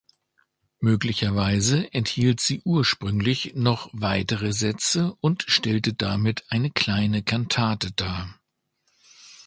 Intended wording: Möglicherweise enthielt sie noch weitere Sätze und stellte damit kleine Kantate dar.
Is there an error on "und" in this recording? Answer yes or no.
no